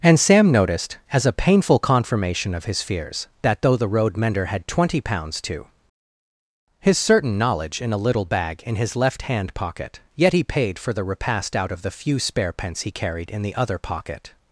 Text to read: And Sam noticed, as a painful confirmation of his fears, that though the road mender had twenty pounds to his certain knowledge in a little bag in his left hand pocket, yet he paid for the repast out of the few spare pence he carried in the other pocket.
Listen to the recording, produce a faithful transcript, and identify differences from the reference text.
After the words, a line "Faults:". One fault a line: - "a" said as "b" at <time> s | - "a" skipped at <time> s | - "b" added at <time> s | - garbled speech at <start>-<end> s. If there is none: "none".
And Sam noticed, as a painful confirmation of his fears, that though the road mender had twenty pounds to his certain knowledge in a little bag in his left hand pocket, yet he paid for the repast out of the few spare pence he carried in the other pocket.
Faults:
none